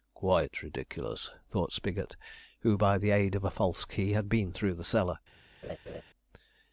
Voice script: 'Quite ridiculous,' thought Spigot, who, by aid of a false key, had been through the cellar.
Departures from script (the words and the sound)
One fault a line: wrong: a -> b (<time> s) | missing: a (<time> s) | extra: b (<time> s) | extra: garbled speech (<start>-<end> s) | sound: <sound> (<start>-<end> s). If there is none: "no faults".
extra: the (3.0 s)
sound: laugh (5.6-6.0 s)